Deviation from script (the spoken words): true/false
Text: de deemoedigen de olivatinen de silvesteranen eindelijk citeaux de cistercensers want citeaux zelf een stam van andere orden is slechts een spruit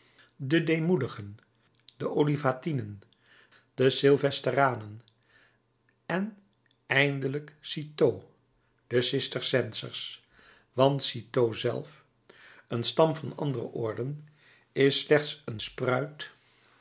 true